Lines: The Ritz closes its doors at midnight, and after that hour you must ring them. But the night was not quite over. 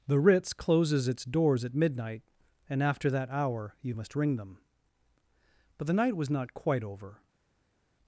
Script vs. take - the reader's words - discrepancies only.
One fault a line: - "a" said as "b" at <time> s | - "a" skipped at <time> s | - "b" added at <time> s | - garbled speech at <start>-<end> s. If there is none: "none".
none